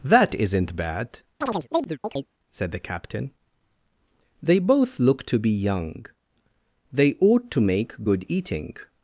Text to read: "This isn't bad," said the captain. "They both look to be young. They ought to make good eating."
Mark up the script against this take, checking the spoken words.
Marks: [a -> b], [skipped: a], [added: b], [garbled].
["This -> That] isn't bad," said the captain. "They both look to be young. They ought to make good eating."